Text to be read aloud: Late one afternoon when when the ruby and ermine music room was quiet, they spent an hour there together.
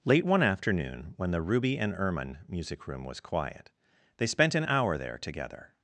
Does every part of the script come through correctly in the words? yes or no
no